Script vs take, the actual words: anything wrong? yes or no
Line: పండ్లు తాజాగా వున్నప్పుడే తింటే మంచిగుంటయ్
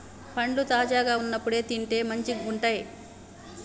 no